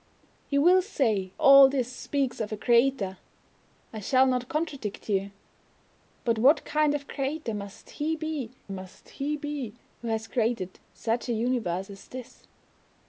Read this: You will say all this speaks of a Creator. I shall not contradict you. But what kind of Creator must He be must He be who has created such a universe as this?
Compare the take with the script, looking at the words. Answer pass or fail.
pass